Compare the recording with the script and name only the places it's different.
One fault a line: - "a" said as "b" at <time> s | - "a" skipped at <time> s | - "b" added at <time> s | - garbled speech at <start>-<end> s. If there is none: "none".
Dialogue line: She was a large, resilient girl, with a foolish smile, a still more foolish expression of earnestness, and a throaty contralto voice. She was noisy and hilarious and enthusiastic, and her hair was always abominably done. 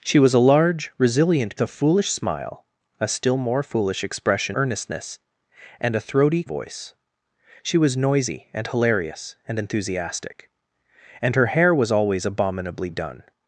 - "girl with" skipped at 1.6 s
- "of" skipped at 4.6 s
- "contralto" skipped at 6.4 s